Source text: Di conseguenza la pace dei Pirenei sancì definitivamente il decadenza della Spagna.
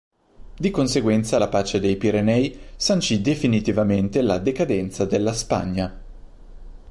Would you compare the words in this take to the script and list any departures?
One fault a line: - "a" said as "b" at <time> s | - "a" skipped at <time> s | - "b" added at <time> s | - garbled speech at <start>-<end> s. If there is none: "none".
- "il" said as "la" at 4.2 s